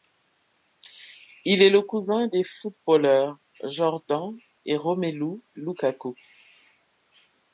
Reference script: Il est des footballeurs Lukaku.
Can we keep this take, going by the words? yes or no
no